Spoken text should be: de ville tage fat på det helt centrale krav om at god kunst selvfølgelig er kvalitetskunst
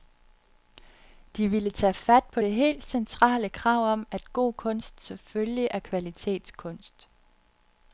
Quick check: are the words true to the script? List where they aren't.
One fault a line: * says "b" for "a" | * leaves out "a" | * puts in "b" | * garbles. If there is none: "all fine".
all fine